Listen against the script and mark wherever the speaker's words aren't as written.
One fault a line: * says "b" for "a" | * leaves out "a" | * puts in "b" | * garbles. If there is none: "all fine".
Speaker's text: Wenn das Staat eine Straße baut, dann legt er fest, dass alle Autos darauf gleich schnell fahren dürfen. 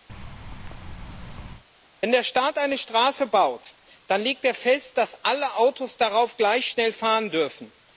* says "der" for "das"